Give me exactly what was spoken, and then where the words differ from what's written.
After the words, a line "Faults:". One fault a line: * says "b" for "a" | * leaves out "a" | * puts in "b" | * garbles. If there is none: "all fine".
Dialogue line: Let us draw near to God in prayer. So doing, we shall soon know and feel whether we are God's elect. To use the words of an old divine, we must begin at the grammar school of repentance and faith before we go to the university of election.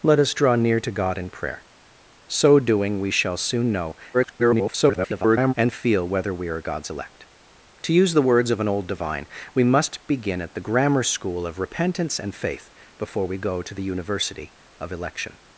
Let us draw near to God in prayer. So doing, we shall soon know [garbled] and feel whether we are God's elect. To use the words of an old divine, we must begin at the grammar school of repentance and faith before we go to the university of election.
Faults:
* garbles